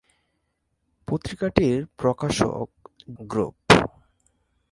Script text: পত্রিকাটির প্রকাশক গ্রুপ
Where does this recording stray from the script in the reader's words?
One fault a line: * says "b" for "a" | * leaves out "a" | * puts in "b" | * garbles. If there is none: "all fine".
all fine